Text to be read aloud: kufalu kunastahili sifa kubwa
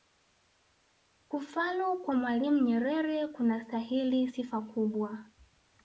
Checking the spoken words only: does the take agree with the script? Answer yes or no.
no